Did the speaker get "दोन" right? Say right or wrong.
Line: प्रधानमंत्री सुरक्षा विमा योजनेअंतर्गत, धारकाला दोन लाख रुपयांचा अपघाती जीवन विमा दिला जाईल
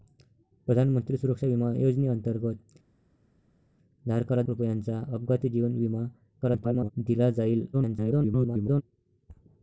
wrong